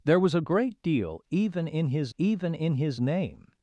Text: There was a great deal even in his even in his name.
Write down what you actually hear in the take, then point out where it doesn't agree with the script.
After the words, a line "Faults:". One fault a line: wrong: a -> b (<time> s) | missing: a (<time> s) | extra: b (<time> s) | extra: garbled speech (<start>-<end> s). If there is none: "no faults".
There was a great deal even in his even in his name.
Faults:
no faults